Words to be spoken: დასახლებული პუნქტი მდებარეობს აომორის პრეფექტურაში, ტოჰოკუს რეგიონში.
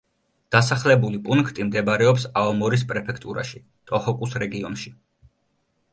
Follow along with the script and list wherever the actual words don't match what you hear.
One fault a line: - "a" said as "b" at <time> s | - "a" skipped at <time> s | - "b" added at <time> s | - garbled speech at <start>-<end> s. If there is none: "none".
none